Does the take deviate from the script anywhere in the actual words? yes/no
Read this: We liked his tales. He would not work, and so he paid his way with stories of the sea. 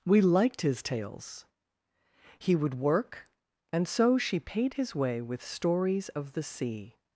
yes